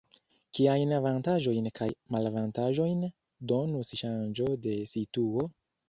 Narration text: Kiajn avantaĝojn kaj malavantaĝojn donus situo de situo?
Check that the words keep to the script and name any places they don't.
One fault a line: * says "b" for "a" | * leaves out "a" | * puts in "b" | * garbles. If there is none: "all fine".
* says "ŝanĝo" for "situo"